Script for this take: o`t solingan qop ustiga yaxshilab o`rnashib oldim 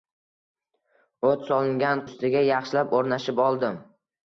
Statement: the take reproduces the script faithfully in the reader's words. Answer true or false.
false